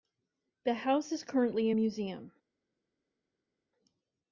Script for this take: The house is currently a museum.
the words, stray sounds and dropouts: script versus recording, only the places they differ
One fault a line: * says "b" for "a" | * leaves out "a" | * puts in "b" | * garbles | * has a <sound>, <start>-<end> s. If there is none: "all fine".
all fine